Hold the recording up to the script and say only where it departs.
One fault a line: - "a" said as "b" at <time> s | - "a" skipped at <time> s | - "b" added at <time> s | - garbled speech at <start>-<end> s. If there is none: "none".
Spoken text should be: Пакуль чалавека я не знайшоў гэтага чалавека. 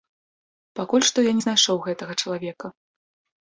- "чалавека" said as "што" at 1.1 s